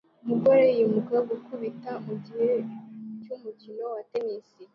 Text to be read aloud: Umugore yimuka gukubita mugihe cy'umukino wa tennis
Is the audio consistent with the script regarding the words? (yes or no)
yes